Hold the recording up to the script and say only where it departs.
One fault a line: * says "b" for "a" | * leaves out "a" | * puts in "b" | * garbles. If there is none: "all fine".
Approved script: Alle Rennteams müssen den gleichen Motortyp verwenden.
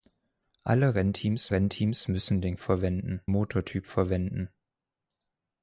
* puts in "Rennteams"
* says "verwenden" for "gleichen"